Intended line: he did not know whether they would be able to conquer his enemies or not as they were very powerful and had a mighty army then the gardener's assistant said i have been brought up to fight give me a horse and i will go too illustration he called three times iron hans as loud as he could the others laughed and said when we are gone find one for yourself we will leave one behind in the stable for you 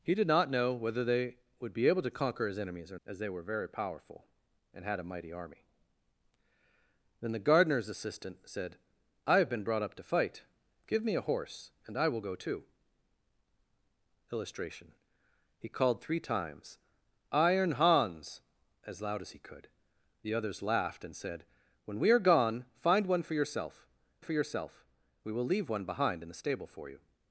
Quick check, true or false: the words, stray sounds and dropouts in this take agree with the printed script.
false